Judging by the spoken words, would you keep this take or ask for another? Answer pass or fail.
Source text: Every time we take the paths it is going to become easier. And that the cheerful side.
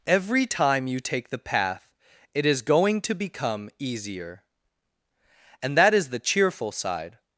fail